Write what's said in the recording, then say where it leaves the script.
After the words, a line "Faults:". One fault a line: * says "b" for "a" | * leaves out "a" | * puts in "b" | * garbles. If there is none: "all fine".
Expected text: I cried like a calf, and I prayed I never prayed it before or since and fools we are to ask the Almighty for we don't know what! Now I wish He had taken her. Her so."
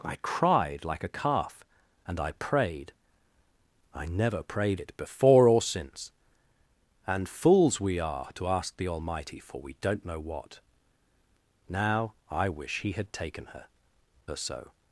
I cried like a calf, and I prayed I never prayed it before or since and fools we are to ask the Almighty for we don't know what! Now I wish He had taken her. Her so."
Faults:
all fine